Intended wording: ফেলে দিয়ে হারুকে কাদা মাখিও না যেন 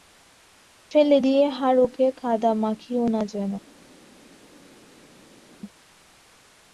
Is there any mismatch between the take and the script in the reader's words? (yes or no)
no